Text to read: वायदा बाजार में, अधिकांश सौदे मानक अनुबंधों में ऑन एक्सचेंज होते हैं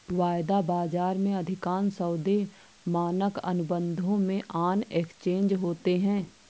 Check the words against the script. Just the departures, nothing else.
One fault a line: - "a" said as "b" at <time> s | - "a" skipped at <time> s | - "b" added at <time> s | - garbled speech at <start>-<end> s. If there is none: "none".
none